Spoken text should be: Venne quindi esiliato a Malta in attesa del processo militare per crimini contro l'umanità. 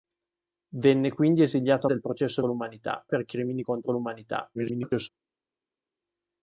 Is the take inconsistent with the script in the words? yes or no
yes